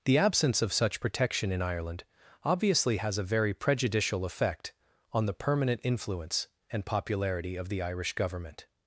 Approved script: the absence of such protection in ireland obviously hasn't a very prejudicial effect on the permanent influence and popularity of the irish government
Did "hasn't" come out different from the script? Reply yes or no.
yes